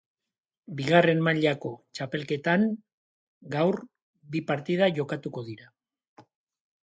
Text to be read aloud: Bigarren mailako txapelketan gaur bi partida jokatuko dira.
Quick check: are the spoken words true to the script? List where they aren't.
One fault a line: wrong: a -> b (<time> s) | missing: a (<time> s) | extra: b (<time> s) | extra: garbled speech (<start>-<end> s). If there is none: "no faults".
no faults